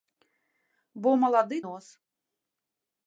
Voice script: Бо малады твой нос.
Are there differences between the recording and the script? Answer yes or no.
yes